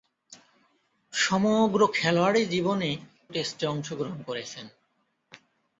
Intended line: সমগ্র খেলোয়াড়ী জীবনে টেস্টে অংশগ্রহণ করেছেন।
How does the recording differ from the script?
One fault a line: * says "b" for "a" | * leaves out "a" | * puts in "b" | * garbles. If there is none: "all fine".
all fine